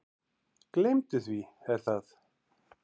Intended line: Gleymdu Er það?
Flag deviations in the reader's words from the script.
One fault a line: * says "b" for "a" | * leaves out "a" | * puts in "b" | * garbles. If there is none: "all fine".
* puts in "því"